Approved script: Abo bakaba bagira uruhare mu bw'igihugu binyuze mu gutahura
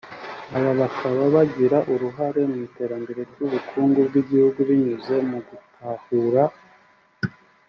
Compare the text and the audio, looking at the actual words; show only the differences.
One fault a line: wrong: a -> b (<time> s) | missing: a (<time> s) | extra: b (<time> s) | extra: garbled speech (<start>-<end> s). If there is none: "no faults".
wrong: Abo -> Aba (0.6 s)
extra: iterambere ry'ubukungu (2.7 s)